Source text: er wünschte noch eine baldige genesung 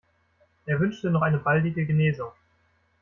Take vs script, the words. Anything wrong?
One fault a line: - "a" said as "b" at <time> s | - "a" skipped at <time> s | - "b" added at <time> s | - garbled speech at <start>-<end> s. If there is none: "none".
none